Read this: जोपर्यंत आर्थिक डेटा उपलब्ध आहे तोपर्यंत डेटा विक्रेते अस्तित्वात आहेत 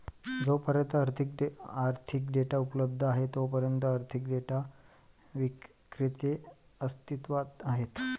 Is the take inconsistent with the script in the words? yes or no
yes